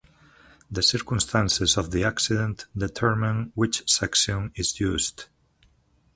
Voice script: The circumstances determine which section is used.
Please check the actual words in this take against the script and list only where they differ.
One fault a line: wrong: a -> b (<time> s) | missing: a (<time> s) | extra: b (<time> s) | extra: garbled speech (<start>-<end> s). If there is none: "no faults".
extra: of the accident (1.8 s)